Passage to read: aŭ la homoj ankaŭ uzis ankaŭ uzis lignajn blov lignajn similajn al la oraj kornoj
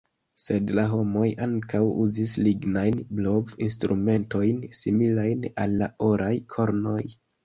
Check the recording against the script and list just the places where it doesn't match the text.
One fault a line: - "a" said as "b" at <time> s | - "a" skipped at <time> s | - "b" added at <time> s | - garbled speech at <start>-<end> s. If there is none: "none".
- "aŭ" said as "sed" at 0.4 s
- "ankaŭ uzis" skipped at 2.3 s
- "lignajn" said as "instrumentojn" at 3.6 s